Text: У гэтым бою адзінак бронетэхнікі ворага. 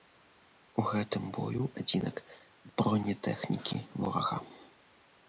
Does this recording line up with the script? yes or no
yes